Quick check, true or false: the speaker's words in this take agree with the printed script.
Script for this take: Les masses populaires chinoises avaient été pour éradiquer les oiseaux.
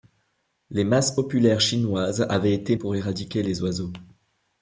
true